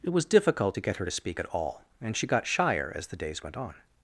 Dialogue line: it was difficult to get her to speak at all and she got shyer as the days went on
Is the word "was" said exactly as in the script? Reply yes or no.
yes